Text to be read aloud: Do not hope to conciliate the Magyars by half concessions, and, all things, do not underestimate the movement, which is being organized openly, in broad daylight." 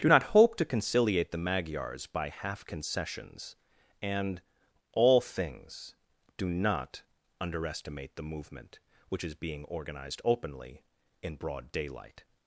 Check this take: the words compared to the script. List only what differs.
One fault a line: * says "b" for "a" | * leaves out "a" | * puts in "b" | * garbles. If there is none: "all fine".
all fine